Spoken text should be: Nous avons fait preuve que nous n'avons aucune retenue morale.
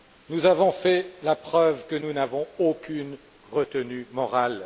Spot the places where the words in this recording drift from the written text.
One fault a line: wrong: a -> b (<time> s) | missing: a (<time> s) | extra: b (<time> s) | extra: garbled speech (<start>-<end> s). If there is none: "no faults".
extra: la (1.2 s)